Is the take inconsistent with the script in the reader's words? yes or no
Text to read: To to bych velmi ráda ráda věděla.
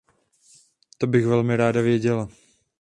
yes